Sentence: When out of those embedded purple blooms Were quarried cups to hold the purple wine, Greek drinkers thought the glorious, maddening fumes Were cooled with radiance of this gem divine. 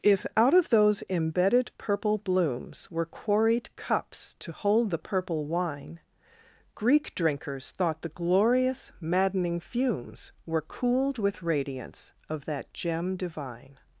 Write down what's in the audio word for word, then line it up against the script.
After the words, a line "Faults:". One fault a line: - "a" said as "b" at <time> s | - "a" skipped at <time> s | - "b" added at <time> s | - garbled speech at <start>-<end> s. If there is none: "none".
If out of those embedded purple blooms Were quarried cups to hold the purple wine, Greek drinkers thought the glorious, maddening fumes Were cooled with radiance of that gem divine.
Faults:
- "When" said as "If" at 0.0 s
- "this" said as "that" at 12.4 s